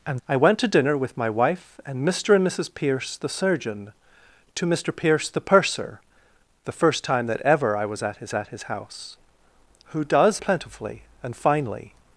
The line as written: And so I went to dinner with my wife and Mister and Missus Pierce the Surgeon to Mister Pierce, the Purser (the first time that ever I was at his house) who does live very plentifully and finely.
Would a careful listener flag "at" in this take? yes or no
no